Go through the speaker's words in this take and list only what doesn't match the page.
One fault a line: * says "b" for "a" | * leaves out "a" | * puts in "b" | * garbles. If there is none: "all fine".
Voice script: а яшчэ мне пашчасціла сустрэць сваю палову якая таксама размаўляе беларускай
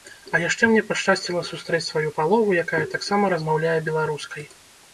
all fine